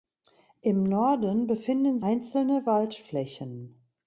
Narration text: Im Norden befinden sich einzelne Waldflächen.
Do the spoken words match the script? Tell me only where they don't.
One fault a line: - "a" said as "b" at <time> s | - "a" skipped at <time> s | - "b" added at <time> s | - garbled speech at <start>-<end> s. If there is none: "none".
- "sich" skipped at 2.0 s